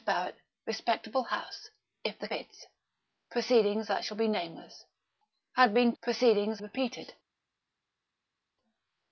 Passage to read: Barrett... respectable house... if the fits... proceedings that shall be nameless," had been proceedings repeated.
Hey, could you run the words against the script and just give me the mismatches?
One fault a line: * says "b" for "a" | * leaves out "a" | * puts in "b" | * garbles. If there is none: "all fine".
all fine